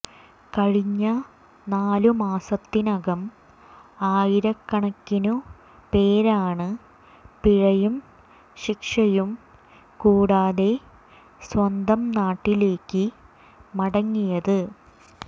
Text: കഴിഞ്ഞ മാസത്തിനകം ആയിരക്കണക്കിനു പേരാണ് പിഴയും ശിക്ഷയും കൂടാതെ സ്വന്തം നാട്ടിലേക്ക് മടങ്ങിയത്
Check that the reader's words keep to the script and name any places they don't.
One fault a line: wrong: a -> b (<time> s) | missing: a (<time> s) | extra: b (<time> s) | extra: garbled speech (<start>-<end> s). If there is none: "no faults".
extra: നാലു (1.7 s)